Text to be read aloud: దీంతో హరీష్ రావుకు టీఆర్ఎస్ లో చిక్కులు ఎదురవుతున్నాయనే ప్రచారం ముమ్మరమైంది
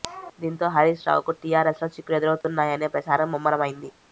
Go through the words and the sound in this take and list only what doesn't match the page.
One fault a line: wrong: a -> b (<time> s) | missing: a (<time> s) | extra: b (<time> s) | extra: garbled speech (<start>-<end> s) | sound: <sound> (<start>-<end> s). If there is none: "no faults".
sound: dropout (2.4-2.4 s)